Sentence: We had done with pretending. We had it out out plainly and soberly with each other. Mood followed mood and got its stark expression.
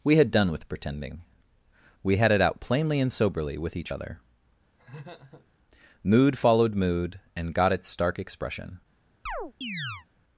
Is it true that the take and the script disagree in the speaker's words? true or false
true